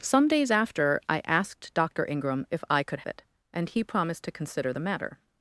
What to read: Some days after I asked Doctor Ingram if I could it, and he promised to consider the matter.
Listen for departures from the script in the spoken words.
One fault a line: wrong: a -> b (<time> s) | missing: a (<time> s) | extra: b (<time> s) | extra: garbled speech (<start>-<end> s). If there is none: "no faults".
no faults